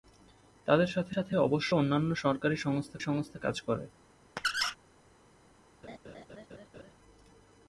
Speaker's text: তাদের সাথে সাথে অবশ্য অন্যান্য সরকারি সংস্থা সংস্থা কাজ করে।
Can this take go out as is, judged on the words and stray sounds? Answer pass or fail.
fail